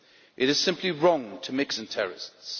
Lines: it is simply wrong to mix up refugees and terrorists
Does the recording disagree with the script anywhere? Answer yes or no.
yes